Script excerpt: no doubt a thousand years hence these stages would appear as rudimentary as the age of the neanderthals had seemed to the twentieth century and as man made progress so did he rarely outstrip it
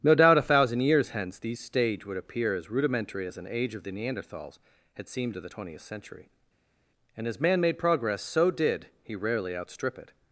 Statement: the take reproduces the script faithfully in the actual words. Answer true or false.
false